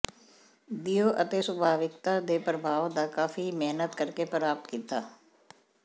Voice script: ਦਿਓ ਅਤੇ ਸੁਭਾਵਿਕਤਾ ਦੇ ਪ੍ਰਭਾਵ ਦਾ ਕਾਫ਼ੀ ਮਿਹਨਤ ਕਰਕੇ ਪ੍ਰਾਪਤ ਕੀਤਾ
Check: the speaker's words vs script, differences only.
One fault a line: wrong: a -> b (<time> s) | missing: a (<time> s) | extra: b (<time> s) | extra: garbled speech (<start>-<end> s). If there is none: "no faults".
no faults